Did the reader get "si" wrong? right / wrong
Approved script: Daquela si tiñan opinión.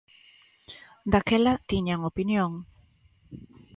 wrong